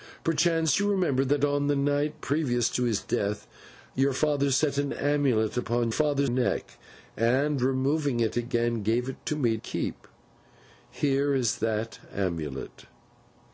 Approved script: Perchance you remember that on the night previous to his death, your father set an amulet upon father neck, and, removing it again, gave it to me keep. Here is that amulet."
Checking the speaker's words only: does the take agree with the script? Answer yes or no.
yes